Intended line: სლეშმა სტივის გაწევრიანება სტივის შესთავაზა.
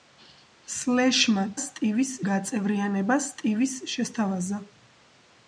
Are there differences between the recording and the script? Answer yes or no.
no